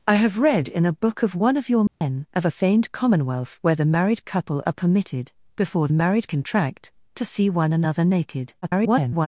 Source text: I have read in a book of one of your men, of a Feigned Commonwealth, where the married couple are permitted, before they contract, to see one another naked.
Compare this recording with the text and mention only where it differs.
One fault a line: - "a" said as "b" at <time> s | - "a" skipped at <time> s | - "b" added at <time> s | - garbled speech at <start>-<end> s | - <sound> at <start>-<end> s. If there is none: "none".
- dropout at 1.9-2.0 s
- "they" said as "married" at 5.9 s
- garbled speech at 8.6-9.3 s